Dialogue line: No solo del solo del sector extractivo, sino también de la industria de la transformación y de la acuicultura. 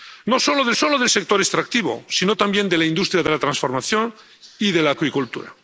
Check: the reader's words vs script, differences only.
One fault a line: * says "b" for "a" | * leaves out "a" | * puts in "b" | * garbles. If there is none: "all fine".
all fine